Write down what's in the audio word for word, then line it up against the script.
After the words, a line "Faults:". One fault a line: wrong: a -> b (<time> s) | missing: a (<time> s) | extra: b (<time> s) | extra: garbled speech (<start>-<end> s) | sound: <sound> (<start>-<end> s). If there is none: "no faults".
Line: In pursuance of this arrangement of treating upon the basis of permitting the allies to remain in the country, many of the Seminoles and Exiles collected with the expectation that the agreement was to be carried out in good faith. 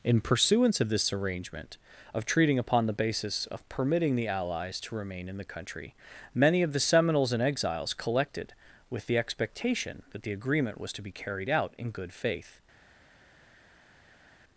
In pursuance of this arrangement of treating upon the basis of permitting the allies to remain in the country, many of the Seminoles and Exiles collected with the expectation that the agreement was to be carried out in good faith.
Faults:
no faults